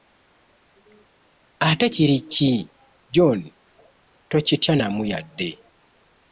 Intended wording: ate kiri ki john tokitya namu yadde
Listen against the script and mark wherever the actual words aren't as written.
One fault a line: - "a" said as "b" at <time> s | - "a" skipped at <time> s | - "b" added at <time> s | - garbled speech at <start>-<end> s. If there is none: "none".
none